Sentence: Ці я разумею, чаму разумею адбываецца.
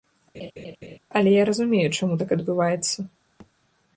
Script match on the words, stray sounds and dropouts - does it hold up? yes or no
no